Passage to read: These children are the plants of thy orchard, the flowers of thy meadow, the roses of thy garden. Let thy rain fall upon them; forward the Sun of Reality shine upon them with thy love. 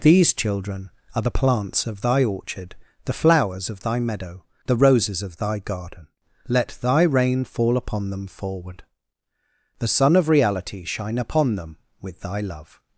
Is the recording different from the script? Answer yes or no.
no